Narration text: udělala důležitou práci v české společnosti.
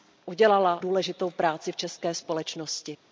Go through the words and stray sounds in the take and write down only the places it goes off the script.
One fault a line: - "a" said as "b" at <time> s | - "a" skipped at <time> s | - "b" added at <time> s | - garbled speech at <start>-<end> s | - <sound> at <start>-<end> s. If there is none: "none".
none